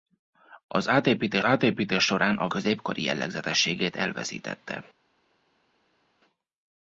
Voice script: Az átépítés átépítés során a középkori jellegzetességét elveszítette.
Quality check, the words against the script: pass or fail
pass